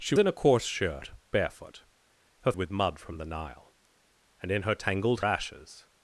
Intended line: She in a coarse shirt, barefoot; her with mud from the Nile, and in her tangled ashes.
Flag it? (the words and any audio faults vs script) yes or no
no